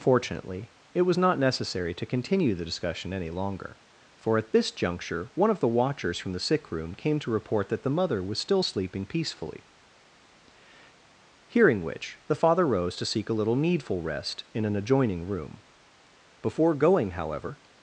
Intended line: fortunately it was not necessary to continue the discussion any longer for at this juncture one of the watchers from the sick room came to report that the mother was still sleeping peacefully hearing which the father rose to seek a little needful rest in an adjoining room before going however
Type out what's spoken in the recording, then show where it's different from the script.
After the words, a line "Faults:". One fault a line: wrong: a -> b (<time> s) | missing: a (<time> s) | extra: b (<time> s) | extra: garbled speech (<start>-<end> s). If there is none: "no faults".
fortunately it was not necessary to continue the discussion any longer for at this juncture one of the watchers from the sick room came to report that the mother was still sleeping peacefully hearing which the father rose to seek a little needful rest in an adjoining room before going however
Faults:
no faults